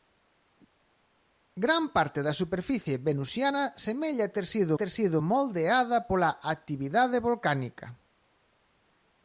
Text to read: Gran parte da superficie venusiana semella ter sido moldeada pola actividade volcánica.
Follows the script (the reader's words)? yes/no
no